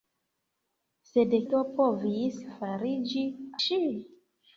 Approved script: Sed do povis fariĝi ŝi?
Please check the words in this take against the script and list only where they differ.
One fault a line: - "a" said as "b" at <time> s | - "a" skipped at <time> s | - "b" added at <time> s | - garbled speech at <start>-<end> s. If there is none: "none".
none